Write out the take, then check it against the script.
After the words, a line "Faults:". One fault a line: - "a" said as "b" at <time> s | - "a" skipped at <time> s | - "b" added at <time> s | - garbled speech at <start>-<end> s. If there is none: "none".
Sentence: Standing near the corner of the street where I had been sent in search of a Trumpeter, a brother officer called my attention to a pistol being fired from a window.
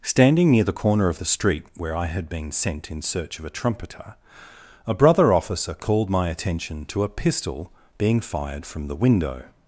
Standing near the corner of the street where I had been sent in search of a Trumpeter, a brother officer called my attention to a pistol being fired from the window.
Faults:
- "a" said as "the" at 8.9 s